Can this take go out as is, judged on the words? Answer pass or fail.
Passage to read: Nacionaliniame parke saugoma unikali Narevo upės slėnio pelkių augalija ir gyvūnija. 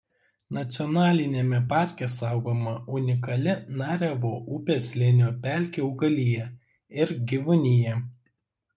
pass